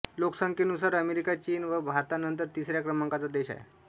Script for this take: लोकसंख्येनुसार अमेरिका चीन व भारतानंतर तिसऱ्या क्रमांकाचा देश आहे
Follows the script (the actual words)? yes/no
yes